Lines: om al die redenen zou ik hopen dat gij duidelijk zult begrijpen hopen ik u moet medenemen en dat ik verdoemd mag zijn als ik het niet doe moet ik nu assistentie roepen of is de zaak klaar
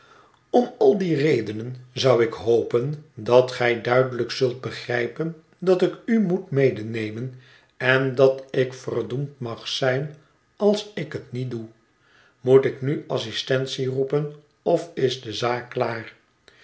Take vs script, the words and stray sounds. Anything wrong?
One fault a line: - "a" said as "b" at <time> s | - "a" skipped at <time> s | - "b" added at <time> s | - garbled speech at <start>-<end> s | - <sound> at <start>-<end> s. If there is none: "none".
- "hopen" said as "dat" at 5.6 s